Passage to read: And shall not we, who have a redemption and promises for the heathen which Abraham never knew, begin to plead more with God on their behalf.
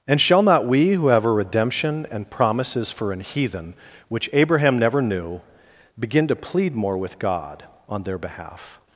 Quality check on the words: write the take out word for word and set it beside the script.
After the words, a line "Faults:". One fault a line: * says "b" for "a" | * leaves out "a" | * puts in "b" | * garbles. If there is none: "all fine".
And shall not we, who have a redemption and promises for an heathen which Abraham never knew, begin to plead more with God on their behalf.
Faults:
* says "an" for "the"